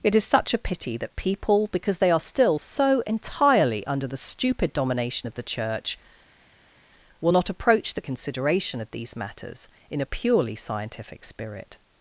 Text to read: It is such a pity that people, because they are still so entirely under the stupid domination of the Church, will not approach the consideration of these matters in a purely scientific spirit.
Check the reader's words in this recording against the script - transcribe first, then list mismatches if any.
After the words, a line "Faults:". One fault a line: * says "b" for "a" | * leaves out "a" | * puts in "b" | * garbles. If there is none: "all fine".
It is such a pity that people, because they are still so entirely under the stupid domination of the Church, will not approach the consideration of these matters in a purely scientific spirit.
Faults:
all fine